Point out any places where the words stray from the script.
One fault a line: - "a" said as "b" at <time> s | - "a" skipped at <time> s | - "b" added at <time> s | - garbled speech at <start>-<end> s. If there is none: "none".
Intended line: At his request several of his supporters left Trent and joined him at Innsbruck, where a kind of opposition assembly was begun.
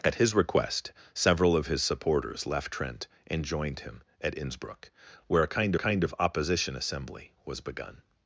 - "kind" added at 5.7 s